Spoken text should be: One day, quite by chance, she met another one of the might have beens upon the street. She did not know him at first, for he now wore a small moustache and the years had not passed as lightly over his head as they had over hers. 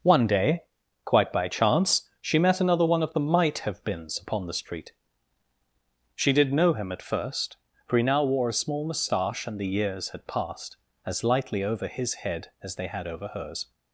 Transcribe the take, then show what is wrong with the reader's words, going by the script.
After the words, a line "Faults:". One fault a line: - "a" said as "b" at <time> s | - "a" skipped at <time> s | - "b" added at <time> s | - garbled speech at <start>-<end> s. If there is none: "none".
One day, quite by chance, she met another one of the might have beens upon the street. She did know him at first, for he now wore a small moustache and the years had passed as lightly over his head as they had over hers.
Faults:
- "not" skipped at 6.5 s
- "not" skipped at 10.3 s